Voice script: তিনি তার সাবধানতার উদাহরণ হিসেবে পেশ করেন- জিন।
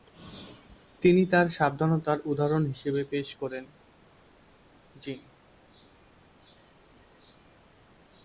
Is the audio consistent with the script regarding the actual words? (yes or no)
yes